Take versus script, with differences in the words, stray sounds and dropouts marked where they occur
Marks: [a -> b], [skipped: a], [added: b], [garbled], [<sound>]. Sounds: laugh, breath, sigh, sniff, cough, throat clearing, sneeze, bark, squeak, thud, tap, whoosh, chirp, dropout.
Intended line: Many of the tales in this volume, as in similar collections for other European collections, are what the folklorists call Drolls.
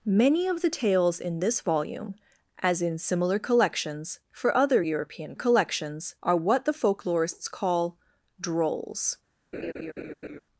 Many of the tales in this volume, as in similar collections for other European collections, are what the folklorists call Drolls. [laugh]